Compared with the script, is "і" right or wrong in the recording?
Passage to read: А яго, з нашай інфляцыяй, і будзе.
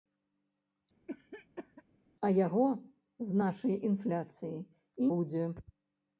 right